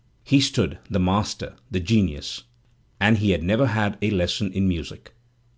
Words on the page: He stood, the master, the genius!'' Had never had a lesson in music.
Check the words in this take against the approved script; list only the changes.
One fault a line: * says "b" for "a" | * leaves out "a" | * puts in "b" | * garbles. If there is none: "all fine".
* puts in "And he"